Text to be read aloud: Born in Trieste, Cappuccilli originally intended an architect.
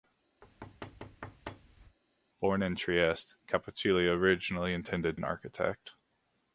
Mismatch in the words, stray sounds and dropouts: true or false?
true